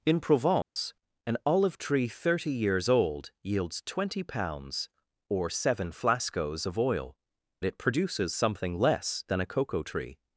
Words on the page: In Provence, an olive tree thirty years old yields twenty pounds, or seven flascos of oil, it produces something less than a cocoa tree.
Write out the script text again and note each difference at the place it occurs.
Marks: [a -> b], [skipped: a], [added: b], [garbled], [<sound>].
In Provence, [dropout] an olive tree thirty years old yields twenty pounds, or seven flascos of oil, it produces something less than a cocoa tree.